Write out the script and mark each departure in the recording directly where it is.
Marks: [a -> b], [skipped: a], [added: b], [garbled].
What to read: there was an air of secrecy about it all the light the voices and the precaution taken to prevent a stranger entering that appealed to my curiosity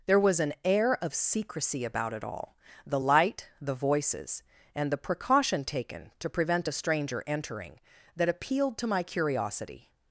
there was an air of secrecy about it all the light the voices and the precaution taken to prevent a stranger entering that appealed to my curiosity